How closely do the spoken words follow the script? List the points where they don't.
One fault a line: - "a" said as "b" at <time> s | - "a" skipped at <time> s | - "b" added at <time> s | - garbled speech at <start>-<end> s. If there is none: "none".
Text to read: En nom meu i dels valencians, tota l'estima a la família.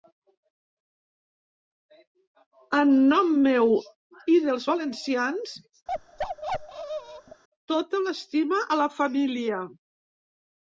none